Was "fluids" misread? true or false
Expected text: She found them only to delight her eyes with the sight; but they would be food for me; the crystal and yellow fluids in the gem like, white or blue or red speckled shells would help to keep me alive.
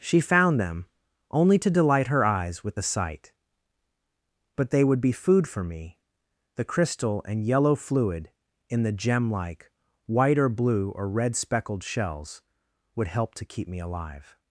true